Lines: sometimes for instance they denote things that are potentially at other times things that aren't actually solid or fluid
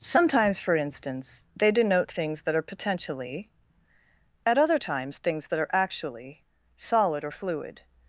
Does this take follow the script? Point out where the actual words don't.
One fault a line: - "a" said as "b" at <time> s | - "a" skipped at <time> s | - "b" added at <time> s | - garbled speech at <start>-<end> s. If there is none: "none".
- "aren't" said as "are" at 5.6 s